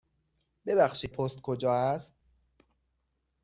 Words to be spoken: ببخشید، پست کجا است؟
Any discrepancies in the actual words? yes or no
no